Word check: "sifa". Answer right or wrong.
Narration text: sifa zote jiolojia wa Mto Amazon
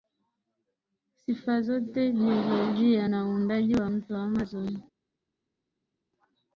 right